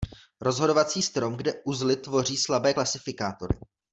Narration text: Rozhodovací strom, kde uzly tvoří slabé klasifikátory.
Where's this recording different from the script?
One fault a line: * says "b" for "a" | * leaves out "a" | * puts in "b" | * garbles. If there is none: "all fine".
all fine